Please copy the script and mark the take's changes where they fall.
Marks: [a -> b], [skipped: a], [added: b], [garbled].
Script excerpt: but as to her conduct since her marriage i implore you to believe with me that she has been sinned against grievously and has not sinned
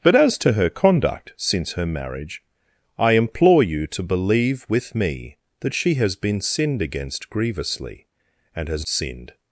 but as to her conduct since her marriage i implore you to believe with me that she has been sinned against grievously and has [skipped: not] sinned